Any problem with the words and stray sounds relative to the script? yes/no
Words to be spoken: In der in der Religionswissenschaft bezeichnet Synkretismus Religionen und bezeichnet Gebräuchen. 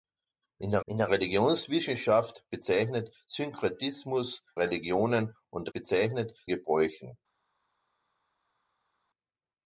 no